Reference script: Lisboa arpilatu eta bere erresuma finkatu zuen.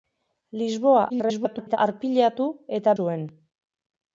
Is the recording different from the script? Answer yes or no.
yes